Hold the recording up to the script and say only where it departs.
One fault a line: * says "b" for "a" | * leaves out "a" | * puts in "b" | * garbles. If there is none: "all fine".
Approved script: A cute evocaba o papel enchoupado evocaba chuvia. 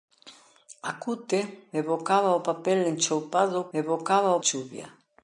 all fine